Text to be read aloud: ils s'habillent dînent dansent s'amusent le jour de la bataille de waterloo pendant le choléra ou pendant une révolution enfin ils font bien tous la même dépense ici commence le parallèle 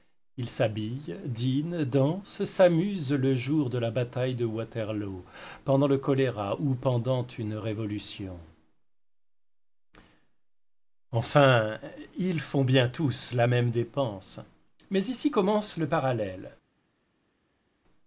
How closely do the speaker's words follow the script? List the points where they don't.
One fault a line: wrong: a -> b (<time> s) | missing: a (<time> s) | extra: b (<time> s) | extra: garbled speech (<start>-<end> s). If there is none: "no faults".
extra: mais (14.9 s)